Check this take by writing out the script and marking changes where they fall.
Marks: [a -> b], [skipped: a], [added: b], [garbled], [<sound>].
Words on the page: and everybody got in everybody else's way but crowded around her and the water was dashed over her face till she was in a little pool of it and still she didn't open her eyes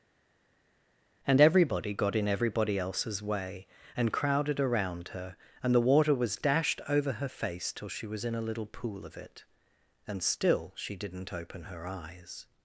and everybody got in everybody else's way [but -> and] crowded around her and the water was dashed over her face till she was in a little pool of it and still she didn't open her eyes